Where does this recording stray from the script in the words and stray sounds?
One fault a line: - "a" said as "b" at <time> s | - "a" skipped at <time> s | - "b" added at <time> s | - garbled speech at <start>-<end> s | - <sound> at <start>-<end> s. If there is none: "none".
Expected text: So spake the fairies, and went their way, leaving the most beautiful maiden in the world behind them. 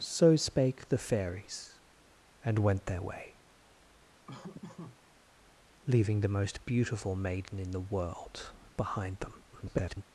- laugh at 4.3-5.0 s
- garbled speech at 9.5-10.0 s